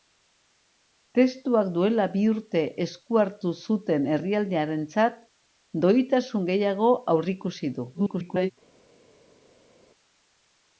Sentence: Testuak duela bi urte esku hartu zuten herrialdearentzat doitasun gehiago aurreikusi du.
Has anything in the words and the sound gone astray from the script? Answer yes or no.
yes